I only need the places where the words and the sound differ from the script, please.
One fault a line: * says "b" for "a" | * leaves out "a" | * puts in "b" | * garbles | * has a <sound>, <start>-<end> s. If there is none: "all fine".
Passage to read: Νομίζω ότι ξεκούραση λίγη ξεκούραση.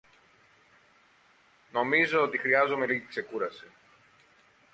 * says "χρειάζομαι" for "ξεκούραση"